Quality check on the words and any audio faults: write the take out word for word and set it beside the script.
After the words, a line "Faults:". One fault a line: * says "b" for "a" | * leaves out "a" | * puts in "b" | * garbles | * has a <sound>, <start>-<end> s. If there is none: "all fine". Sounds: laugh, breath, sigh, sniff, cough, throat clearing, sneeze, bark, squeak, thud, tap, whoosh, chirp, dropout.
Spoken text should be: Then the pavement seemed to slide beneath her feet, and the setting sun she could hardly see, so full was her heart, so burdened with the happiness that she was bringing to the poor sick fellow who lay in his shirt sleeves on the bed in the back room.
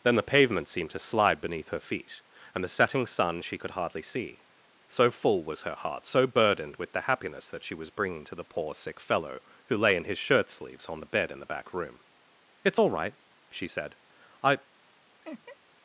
Then the pavement seemed to slide beneath her feet, and the setting sun she could hardly see, so full was her heart, so burdened with the happiness that she was bringing to the poor sick fellow who lay in his shirt sleeves on the bed in the back room. "It's all right," she said. "I
Faults:
* puts in "It's all right she said I"
* has a laugh, 15.2-15.6 s